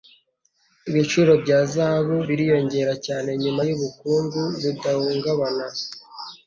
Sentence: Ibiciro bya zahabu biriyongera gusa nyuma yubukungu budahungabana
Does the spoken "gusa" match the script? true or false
false